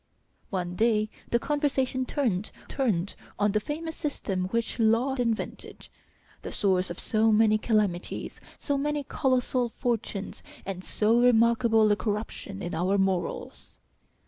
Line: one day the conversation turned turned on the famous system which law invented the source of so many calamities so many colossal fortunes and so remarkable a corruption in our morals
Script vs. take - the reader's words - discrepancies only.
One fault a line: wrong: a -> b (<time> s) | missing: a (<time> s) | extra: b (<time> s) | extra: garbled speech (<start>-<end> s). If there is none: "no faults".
no faults